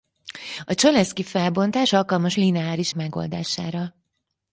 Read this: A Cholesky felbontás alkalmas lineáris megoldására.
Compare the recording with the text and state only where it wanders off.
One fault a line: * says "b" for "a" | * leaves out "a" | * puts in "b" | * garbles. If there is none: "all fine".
all fine